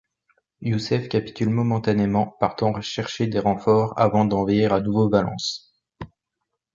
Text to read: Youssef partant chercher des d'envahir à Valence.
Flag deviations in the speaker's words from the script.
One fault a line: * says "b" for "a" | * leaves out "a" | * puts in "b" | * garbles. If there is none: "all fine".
* puts in "capitule momentanément"
* puts in "renforts avant"
* puts in "nouveau"